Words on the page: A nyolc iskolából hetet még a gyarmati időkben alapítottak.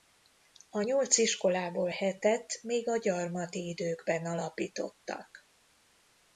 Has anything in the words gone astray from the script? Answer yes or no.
no